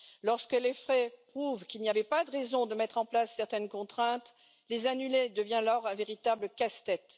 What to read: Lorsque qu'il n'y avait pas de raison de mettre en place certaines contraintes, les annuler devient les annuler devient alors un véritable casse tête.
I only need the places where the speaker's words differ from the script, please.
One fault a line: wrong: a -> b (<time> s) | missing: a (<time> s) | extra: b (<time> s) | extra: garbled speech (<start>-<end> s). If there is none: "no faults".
extra: les faits prouvent (0.5 s)
missing: les annuler devient (5.6 s)